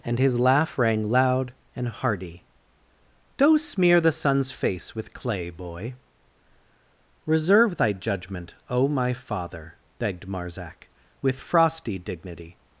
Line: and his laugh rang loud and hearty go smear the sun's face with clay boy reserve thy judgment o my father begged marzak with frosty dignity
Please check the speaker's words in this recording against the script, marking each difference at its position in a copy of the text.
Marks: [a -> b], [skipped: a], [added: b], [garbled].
and his laugh rang loud and hearty [go -> do] smear the sun's face with clay boy reserve thy judgment o my father begged marzak with frosty dignity